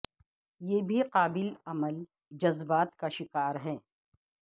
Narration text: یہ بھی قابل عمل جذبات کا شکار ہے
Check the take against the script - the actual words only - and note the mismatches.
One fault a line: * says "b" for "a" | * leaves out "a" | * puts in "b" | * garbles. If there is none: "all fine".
all fine